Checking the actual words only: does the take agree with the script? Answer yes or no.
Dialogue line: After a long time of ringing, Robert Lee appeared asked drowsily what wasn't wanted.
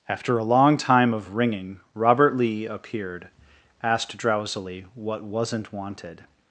yes